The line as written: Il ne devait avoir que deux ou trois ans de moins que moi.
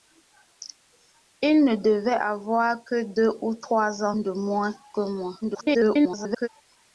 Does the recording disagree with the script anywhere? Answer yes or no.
yes